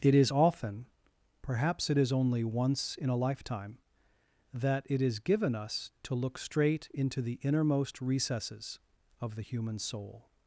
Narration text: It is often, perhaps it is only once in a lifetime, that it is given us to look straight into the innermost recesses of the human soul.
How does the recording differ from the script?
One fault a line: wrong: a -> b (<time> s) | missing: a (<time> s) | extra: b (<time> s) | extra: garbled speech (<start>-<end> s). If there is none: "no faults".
no faults